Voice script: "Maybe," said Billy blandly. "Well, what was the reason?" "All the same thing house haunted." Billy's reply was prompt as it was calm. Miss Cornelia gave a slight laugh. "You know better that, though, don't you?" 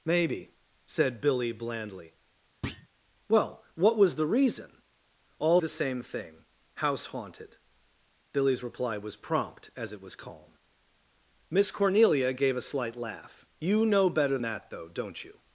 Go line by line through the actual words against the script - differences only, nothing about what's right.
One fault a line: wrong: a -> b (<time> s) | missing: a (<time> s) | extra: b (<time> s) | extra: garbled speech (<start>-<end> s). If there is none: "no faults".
no faults